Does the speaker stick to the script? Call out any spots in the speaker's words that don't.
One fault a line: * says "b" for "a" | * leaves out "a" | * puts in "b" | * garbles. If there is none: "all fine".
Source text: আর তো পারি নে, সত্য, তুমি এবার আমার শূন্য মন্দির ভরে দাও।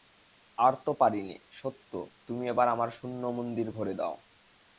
all fine